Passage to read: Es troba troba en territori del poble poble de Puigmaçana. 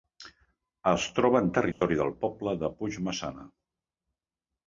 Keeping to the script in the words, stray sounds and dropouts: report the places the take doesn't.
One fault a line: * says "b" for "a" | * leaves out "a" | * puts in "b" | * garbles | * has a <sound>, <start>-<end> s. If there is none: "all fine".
* leaves out "troba"
* has a dropout, 1.7-1.8 s
* leaves out "poble"